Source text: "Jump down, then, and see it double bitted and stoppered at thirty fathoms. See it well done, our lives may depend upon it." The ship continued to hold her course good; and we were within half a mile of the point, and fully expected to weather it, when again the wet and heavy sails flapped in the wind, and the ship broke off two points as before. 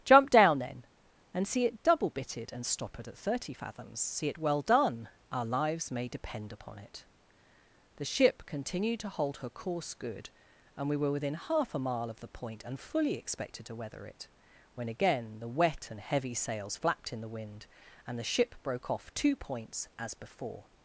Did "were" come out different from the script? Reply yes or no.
no